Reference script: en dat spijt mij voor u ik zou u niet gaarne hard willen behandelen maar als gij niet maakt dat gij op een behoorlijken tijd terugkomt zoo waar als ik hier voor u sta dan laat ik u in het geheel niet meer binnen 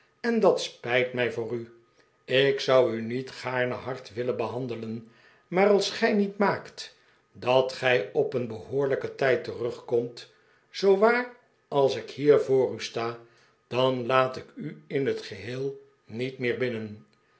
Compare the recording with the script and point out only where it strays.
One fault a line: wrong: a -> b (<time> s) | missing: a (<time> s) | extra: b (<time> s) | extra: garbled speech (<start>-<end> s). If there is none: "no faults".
no faults